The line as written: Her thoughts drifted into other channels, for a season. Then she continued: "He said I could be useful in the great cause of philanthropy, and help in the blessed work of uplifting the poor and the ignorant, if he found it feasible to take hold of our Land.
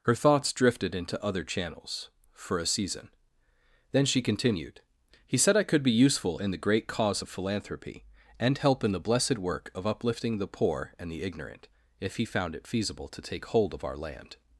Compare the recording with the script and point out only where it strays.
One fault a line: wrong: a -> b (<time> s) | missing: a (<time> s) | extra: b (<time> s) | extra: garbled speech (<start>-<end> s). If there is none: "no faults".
no faults